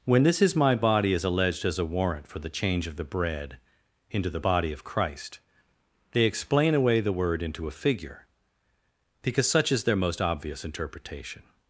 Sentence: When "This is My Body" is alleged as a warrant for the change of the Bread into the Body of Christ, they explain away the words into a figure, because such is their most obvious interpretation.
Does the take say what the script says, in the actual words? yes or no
no